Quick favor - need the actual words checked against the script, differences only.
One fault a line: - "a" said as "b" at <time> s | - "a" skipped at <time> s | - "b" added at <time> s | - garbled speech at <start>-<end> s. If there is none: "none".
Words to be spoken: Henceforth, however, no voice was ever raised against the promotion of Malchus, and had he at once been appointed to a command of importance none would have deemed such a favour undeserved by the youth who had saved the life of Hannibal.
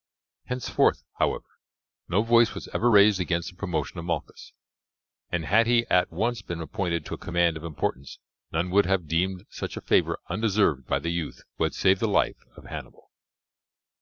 none